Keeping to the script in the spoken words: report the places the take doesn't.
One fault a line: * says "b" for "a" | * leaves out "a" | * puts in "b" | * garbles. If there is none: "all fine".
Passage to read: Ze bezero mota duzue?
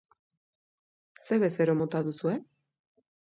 all fine